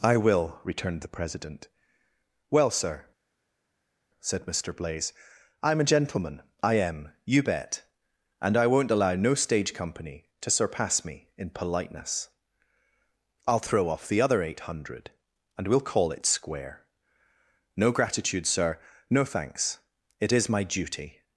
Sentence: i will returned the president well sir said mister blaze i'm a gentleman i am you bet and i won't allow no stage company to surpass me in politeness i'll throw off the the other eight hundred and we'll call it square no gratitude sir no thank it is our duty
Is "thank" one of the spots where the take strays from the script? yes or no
yes